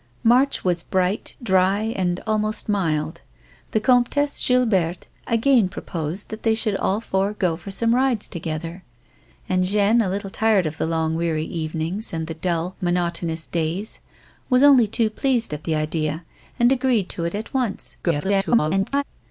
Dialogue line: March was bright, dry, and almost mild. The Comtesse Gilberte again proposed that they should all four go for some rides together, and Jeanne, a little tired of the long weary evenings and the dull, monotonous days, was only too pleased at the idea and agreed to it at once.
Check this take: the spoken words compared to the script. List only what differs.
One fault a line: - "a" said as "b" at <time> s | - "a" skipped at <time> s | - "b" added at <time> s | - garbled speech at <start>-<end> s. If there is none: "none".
- garbled speech at 18.0-19.0 s